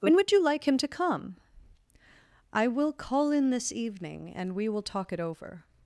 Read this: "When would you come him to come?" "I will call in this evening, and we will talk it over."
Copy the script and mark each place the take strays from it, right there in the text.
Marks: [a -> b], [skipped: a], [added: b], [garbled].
"When would you [come -> like] him to come?" "I will call in this evening, and we will talk it over."